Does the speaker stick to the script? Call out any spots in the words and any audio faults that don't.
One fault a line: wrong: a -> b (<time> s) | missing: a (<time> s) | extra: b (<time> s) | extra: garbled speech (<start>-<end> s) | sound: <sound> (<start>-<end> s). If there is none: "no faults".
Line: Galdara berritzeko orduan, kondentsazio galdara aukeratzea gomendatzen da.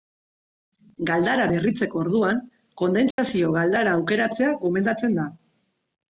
sound: dropout (3.1-3.2 s)